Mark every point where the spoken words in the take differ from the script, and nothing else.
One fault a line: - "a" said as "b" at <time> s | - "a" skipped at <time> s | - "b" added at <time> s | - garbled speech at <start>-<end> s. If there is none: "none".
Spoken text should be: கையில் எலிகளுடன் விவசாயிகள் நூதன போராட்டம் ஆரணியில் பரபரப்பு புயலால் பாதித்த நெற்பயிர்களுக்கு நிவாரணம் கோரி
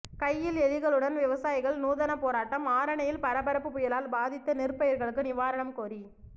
none